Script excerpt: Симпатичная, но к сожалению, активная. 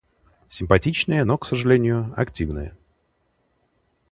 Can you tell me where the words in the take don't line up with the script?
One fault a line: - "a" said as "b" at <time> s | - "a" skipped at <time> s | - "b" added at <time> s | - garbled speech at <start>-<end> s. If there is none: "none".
none